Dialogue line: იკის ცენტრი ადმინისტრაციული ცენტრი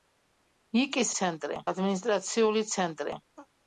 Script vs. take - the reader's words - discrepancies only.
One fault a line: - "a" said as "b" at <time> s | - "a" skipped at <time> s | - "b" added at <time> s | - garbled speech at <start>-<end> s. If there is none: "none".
none